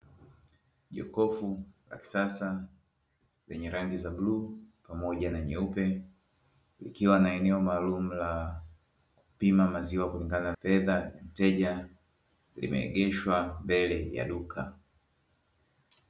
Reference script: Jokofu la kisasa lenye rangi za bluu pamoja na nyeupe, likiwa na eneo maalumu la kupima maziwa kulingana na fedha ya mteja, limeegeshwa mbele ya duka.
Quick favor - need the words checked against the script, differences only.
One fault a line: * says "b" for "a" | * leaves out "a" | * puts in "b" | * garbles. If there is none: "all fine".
* leaves out "na"